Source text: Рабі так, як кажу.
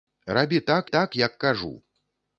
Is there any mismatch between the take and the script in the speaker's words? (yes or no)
yes